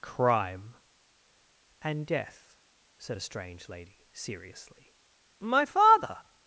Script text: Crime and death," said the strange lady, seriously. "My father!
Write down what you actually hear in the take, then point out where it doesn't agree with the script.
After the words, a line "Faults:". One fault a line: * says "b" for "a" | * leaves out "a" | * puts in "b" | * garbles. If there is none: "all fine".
Crime and death," said a strange lady, seriously. "My father!
Faults:
* says "a" for "the"